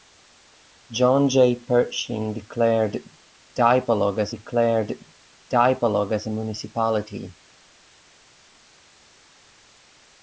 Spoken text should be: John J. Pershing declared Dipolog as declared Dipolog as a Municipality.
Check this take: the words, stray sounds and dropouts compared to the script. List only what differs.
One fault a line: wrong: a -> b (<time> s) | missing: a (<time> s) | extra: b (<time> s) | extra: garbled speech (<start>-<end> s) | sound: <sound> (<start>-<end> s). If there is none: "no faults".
no faults